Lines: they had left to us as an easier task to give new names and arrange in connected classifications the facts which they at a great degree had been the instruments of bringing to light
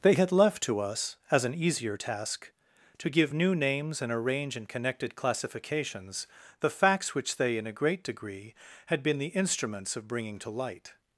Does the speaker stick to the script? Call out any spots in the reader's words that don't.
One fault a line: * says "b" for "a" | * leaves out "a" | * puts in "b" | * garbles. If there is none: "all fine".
* says "in" for "at"